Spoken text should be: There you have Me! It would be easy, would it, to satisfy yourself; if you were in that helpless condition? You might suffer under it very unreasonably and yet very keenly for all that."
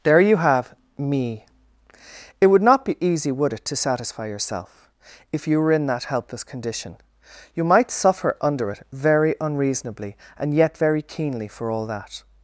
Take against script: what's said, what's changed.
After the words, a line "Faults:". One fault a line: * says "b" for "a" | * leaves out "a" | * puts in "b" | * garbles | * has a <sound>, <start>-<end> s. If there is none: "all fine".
There you have Me! It would not be easy, would it, to satisfy yourself; if you were in that helpless condition? You might suffer under it very unreasonably and yet very keenly for all that."
Faults:
* puts in "not"